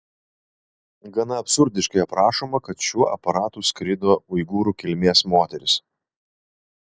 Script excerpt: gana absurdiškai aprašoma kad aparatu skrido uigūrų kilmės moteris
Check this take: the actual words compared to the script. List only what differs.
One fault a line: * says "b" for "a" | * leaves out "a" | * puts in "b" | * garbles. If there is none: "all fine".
* puts in "šiuo"